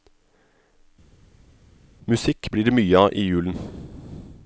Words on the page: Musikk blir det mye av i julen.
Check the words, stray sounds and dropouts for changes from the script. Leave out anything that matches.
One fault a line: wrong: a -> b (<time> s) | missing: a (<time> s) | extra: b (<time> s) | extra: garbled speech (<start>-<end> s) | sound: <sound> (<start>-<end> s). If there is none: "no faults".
no faults